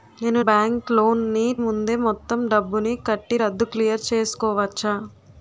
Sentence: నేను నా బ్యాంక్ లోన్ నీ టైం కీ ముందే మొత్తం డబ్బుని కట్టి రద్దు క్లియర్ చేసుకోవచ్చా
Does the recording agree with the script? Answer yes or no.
no